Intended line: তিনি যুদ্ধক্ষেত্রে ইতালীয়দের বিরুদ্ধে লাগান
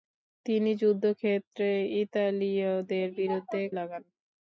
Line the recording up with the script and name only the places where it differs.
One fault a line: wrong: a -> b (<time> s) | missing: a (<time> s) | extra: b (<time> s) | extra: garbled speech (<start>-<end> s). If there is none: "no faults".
no faults